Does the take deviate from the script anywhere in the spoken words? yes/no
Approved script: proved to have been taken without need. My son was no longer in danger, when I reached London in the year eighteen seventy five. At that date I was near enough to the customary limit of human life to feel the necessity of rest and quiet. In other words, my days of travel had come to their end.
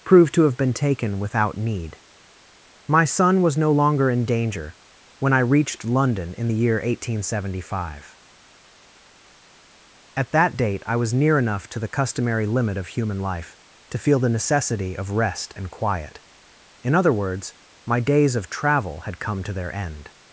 no